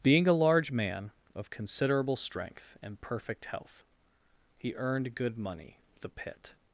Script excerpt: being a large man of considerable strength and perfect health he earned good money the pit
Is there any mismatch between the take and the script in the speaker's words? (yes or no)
no